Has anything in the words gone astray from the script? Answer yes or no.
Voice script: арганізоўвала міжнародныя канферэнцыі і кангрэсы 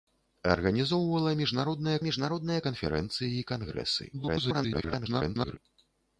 yes